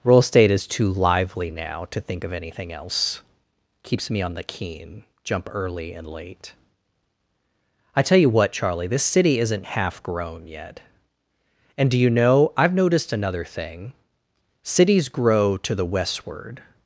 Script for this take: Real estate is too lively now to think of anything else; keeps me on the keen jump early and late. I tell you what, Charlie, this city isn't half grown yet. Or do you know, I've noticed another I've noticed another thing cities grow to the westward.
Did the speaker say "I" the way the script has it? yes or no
yes